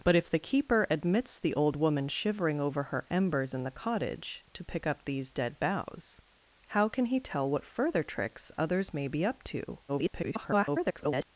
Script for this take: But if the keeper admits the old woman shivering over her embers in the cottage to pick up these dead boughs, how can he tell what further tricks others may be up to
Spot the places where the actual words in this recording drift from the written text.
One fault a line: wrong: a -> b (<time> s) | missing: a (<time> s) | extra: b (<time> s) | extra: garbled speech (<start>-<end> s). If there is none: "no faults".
extra: garbled speech (9.9-11.3 s)